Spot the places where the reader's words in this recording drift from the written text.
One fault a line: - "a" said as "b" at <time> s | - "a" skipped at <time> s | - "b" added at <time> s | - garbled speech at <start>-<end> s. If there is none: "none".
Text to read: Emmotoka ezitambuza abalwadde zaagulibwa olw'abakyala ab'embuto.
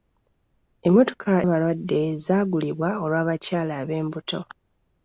- "ezitambuza" skipped at 1.3 s